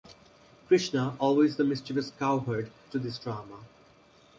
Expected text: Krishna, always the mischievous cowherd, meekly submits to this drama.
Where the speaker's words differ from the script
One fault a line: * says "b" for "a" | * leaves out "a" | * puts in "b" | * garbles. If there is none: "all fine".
* leaves out "meekly submits"